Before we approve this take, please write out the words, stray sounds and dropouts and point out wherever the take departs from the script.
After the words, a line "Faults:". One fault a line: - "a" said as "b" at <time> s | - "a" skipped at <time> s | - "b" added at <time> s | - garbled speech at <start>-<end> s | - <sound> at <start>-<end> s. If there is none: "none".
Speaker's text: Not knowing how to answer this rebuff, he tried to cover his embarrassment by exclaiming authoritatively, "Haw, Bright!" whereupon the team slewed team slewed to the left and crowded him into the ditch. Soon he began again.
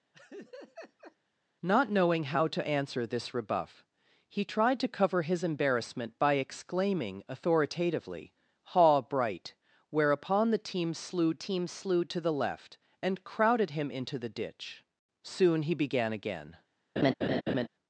Not knowing how to answer this rebuff, he tried to cover his embarrassment by exclaiming authoritatively, "Haw, Bright!" whereupon the team slewed team slewed to the left and crowded him into the ditch. Soon he began again.
Faults:
- laugh at 0.1-1.2 s
- laugh at 17.0-17.7 s